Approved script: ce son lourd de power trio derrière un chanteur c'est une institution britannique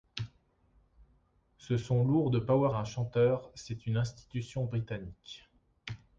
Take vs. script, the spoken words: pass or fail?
fail